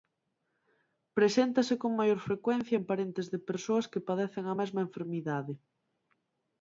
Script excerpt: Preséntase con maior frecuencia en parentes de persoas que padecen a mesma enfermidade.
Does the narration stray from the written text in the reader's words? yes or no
no